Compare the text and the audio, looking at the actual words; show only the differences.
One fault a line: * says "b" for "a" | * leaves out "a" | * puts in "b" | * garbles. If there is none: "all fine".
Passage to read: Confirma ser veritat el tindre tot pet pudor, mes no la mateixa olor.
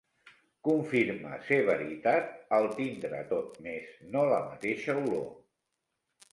* leaves out "pet pudor"